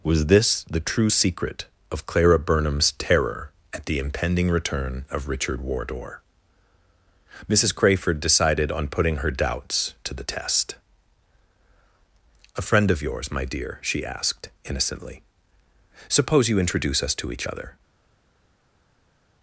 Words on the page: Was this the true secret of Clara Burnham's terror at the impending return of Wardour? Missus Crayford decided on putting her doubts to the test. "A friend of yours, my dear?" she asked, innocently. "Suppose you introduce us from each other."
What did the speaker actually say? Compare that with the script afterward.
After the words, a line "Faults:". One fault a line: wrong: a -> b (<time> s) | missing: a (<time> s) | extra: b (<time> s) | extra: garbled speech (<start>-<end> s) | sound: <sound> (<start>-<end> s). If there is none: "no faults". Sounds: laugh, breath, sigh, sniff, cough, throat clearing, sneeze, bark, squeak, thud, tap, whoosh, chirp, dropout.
Was this the true secret of Clara Burnham's terror at the impending return of Richard Wardour? Missus Crayford decided on putting her doubts to the test. "A friend of yours, my dear?" she asked, innocently. "Suppose you introduce us to each other."
Faults:
extra: Richard (5.3 s)
wrong: from -> to (17.1 s)